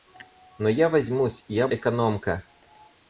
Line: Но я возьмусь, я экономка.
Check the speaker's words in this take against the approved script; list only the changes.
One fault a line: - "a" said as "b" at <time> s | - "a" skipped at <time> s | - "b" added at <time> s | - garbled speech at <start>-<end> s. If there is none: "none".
none